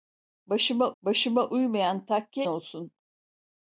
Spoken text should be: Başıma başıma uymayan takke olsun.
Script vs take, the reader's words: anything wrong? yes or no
no